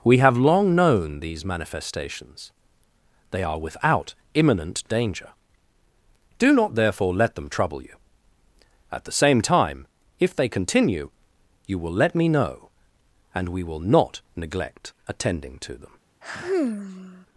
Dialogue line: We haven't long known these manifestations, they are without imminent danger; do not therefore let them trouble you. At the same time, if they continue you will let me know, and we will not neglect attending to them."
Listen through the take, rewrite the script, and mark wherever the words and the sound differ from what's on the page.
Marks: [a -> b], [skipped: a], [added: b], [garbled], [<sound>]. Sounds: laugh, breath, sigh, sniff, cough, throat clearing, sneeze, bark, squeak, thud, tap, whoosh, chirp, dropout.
We [haven't -> have] long known these manifestations, they are without imminent danger; do not therefore let them trouble you. At the same time, if they continue you will let me know, and we will not neglect attending to them." [sigh]